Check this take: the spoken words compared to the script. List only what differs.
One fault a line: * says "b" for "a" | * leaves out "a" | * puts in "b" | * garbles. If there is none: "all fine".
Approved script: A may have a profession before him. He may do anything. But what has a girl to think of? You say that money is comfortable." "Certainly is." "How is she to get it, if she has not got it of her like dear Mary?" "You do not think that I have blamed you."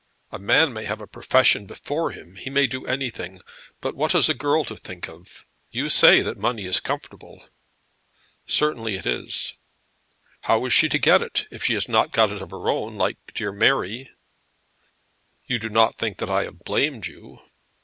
* puts in "man"
* puts in "it"
* puts in "own"